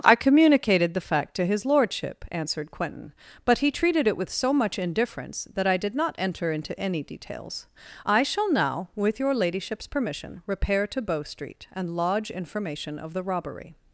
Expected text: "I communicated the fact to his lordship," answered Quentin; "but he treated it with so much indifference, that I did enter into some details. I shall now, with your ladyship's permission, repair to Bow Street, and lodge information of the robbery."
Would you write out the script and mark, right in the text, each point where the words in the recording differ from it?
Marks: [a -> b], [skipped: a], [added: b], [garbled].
"I communicated the fact to his lordship," answered Quentin; "but he treated it with so much indifference, that I did [added: not] enter into [some -> any] details. I shall now, with your ladyship's permission, repair to Bow Street, and lodge information of the robbery."